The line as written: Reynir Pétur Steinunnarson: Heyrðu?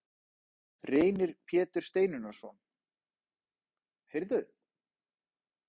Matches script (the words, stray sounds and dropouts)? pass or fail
pass